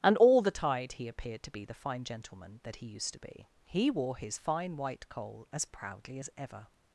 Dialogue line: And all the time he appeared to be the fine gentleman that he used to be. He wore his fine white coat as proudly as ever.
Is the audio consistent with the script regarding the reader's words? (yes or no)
no